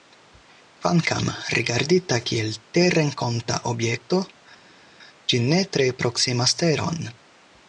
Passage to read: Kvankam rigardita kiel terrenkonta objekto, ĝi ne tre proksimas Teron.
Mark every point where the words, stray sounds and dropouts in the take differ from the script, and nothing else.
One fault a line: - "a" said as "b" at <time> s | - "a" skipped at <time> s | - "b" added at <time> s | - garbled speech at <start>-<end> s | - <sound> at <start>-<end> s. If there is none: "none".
none